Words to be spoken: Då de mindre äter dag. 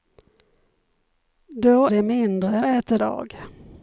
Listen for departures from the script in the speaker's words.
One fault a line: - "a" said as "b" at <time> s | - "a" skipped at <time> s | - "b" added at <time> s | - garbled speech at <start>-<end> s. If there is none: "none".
none